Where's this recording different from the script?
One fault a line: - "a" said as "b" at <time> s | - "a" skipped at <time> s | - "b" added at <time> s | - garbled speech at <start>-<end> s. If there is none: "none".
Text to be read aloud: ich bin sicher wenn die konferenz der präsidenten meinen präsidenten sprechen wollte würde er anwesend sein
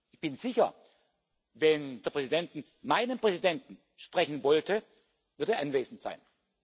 - "die konferenz" skipped at 2.0 s